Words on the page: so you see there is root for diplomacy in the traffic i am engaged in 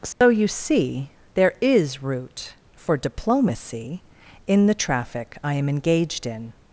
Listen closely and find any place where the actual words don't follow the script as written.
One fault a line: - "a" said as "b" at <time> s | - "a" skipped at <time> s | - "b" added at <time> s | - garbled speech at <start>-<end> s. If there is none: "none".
none